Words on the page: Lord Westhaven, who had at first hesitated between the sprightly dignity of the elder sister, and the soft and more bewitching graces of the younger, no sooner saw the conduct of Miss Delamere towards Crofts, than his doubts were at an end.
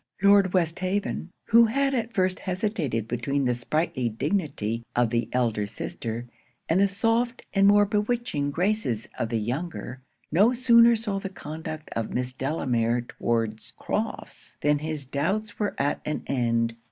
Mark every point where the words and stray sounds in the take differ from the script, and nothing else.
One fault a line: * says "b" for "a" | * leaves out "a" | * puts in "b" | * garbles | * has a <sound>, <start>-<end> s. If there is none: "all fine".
all fine